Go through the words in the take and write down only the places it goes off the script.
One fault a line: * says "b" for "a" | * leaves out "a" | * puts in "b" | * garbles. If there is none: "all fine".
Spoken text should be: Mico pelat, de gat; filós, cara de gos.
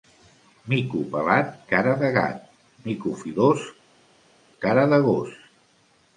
* puts in "cara"
* puts in "mico"